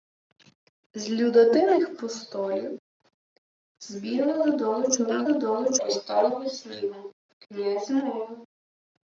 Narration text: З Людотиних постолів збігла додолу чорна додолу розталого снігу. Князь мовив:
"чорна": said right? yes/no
yes